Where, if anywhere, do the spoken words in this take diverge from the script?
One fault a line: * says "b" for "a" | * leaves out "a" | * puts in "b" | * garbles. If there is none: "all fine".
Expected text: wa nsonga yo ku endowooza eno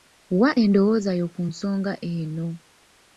* says "endowooza" for "nsonga"
* says "nsonga" for "endowooza"